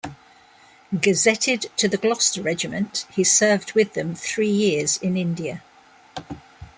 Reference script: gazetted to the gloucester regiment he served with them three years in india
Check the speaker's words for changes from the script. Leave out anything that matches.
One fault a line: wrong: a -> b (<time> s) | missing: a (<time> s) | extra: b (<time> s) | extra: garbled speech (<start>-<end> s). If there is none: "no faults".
no faults